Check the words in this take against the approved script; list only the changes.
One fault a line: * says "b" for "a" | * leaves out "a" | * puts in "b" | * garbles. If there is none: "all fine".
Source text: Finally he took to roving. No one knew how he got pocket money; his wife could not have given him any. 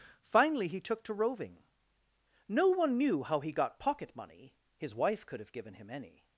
* leaves out "not"